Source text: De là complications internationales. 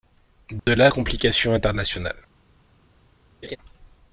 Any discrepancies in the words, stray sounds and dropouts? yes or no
yes